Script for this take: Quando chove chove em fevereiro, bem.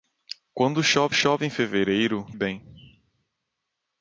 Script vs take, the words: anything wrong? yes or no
no